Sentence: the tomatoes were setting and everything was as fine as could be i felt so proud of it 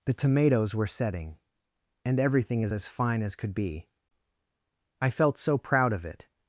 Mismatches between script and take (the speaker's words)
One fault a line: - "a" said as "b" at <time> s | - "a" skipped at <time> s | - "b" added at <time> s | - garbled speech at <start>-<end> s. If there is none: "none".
- "was" said as "is" at 2.6 s